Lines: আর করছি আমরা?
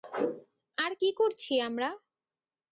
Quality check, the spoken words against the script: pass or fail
fail